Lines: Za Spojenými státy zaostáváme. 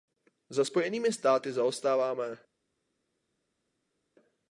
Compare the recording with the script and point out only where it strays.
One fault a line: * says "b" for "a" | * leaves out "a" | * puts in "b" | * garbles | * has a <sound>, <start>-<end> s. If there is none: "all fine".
all fine